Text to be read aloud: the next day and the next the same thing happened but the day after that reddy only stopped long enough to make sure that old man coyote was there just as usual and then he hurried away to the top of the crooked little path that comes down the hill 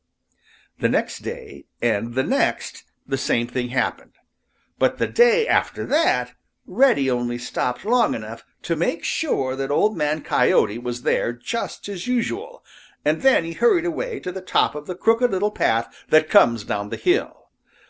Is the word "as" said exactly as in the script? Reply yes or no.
yes